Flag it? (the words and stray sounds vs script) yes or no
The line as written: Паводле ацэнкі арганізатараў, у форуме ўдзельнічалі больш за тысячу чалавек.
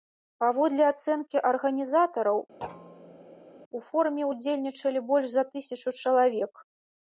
yes